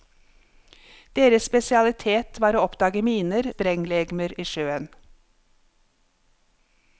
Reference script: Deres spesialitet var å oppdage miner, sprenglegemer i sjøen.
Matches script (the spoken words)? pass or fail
pass